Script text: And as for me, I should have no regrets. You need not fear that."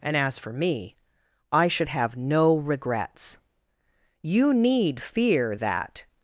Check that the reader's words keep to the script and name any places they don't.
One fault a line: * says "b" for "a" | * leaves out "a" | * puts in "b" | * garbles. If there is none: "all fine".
* leaves out "not"